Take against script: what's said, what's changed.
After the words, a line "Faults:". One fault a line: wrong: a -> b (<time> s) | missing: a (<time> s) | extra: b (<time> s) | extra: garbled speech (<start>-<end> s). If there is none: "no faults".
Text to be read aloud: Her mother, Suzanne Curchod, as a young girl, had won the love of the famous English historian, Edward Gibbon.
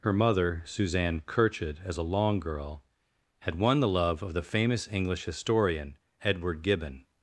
Her mother, Suzanne Curchod, as a long girl, had won the love of the famous English historian, Edward Gibbon.
Faults:
wrong: young -> long (2.0 s)